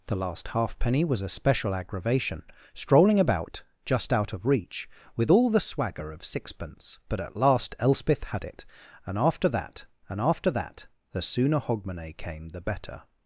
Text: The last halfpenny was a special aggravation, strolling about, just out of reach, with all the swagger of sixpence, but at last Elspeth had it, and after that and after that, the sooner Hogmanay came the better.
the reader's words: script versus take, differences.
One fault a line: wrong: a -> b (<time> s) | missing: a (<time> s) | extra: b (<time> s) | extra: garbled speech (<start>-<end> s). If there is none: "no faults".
no faults